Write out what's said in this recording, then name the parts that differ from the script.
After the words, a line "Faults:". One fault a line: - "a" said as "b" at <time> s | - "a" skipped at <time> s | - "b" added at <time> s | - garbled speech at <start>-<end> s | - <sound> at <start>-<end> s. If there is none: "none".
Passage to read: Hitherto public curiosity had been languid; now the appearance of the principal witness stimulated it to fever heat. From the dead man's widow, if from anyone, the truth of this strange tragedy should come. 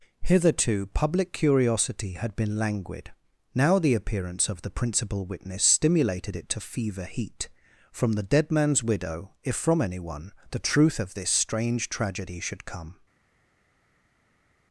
Hitherto public curiosity had been languid; now the appearance of the principal witness stimulated it to fever heat. From the dead man's widow, if from anyone, the truth of this strange tragedy should come.
Faults:
none